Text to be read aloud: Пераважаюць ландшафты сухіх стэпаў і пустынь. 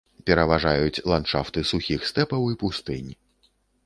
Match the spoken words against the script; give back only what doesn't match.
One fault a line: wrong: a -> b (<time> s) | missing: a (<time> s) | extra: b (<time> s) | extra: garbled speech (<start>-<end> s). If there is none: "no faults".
no faults